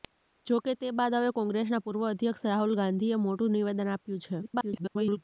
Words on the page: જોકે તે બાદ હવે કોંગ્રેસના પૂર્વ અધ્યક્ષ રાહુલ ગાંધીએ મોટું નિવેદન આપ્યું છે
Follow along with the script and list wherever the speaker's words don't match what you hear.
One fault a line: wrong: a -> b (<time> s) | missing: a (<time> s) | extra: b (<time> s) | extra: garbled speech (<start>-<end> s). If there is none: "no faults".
extra: garbled speech (4.4-5.2 s)